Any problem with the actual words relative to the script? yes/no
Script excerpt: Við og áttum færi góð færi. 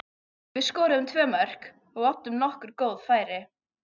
yes